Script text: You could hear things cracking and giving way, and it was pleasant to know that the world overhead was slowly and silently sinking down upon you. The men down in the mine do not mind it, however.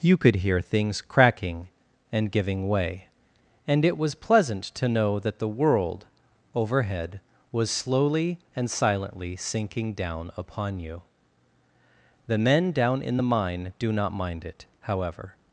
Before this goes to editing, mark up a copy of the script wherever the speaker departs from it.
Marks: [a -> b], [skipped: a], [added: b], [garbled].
You could hear things cracking and giving way, and it was pleasant to know that the world overhead was slowly and silently sinking down upon you. The men down in the mine do not mind it, however.